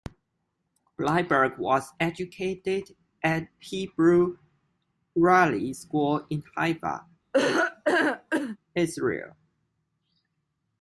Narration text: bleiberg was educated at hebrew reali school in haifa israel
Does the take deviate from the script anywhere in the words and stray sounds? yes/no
yes